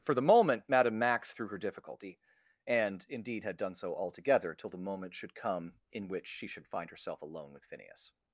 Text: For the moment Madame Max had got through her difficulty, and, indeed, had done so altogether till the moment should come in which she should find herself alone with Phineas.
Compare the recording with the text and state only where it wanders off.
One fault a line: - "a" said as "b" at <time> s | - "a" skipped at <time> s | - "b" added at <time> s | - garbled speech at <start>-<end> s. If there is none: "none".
- "had got" skipped at 1.3 s